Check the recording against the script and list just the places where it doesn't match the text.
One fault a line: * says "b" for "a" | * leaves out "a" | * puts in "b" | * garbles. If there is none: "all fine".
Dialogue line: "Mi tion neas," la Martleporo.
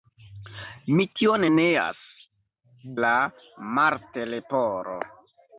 all fine